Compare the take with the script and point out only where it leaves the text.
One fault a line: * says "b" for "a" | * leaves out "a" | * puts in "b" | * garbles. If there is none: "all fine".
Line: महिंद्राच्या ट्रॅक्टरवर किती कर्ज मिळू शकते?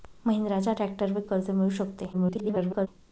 * leaves out "किती"
* garbles